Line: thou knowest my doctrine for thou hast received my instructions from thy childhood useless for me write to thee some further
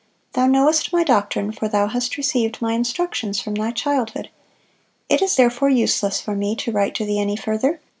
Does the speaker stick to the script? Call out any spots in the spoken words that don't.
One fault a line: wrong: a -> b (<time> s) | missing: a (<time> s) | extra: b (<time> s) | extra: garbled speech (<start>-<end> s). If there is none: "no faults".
extra: it is therefore (5.1 s)
extra: to (6.5 s)
wrong: some -> any (7.2 s)